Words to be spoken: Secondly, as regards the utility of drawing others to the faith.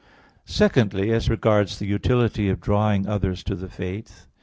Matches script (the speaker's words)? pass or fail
pass